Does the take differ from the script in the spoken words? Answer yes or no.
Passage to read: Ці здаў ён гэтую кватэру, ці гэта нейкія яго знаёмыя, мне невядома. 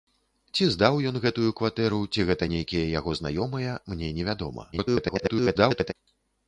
yes